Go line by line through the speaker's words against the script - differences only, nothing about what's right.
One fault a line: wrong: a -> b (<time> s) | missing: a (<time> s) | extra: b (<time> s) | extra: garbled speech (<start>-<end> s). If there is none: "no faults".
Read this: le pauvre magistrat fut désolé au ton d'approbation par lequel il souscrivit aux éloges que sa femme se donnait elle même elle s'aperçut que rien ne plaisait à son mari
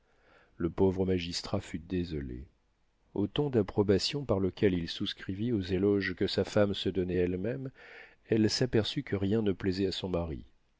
no faults